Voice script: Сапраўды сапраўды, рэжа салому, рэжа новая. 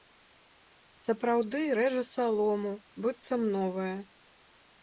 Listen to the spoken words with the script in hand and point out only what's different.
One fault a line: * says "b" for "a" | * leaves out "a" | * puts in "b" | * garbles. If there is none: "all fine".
* leaves out "сапраўды"
* says "быццам" for "рэжа"